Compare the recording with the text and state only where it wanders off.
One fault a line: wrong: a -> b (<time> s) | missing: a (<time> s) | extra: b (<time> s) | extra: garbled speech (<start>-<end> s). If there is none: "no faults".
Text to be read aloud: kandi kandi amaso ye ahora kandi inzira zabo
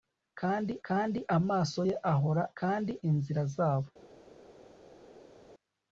no faults